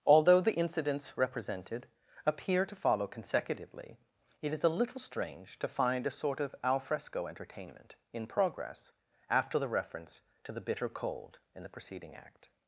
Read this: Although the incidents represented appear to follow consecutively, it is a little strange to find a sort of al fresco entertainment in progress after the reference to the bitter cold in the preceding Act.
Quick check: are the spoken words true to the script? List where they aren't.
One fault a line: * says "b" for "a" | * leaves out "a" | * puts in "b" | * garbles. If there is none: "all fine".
all fine